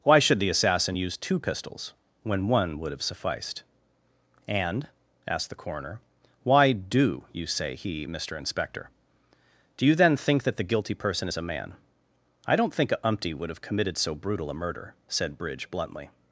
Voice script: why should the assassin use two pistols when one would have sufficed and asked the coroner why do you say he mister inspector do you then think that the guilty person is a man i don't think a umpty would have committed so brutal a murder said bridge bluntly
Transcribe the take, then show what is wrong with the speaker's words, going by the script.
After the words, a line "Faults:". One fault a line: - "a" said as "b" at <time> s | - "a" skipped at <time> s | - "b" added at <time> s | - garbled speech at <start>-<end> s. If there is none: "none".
why should the assassin use two pistols when one would have sufficed and asked the coroner why do you say he mister inspector do you then think that the guilty person is a man i don't think a umpty would have committed so brutal a murder said bridge bluntly
Faults:
none